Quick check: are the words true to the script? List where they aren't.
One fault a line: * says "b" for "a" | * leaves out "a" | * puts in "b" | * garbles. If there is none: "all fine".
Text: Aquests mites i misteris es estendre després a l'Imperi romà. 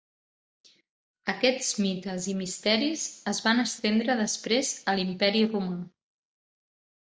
* puts in "van"